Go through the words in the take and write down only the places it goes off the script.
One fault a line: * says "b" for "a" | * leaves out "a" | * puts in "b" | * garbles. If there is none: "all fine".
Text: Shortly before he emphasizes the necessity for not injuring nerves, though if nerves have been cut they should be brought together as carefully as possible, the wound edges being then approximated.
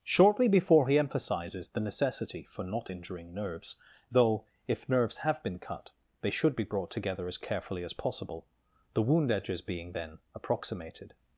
all fine